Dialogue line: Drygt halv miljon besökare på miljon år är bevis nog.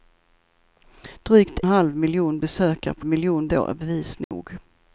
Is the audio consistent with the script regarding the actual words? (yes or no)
yes